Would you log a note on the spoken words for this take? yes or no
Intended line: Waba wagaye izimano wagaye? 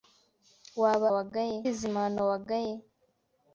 no